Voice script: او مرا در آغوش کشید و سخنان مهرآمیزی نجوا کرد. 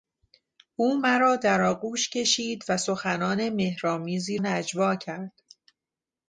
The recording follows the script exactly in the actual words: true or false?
true